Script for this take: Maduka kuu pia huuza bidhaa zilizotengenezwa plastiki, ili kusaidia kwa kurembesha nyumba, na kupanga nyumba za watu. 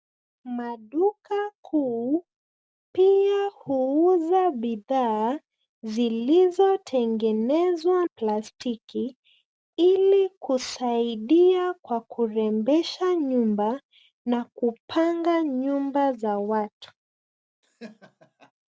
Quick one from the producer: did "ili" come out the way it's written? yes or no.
yes